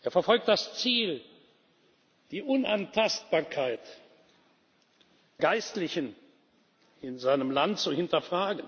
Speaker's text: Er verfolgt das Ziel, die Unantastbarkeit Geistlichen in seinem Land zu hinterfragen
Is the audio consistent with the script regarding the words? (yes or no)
yes